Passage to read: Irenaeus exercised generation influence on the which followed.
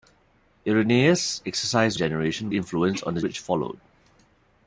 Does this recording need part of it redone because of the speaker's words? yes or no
no